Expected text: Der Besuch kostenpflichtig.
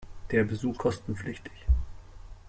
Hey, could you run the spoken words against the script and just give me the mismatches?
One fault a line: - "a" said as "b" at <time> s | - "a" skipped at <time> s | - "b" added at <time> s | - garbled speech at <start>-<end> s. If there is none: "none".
none